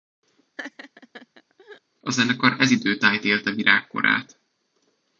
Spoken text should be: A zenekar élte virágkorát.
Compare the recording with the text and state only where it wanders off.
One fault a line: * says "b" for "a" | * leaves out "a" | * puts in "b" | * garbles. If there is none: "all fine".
* puts in "ez idő tájt"